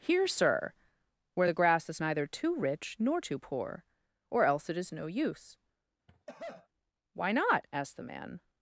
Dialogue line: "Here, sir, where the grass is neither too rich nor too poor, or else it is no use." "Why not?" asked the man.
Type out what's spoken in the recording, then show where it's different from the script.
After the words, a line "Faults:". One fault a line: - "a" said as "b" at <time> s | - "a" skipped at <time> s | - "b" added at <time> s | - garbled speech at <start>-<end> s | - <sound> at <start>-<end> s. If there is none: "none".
"Here, sir, where the grass is neither too rich nor too poor, or else it is no use." "Why not?" asked the man.
Faults:
- cough at 6.1-6.7 s